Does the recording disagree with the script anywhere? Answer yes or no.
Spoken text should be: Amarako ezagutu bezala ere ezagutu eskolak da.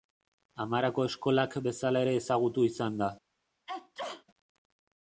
yes